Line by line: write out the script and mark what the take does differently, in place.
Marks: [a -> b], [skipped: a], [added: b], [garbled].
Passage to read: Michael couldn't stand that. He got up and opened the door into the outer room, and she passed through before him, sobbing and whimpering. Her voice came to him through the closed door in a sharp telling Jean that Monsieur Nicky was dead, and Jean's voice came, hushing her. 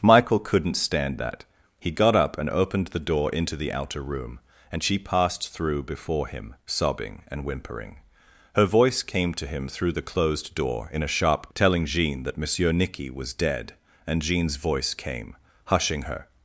Michael couldn't stand that. He got up and opened the door into the outer room, and she passed through before him, sobbing and whimpering. Her voice came to him through the closed door in a sharp telling Jean that Monsieur Nicky was dead, and Jean's voice came, hushing her.